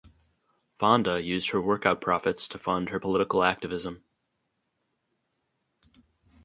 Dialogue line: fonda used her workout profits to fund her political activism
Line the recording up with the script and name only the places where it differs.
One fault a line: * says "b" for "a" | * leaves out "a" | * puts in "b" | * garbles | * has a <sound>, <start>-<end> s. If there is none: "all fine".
all fine